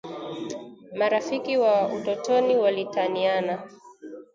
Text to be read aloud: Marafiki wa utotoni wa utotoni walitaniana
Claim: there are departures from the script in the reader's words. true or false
true